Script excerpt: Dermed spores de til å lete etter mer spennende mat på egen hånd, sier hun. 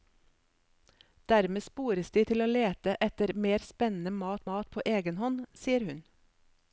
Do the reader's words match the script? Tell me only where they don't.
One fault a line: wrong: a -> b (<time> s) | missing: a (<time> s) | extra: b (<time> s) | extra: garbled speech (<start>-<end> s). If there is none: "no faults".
extra: mat (4.5 s)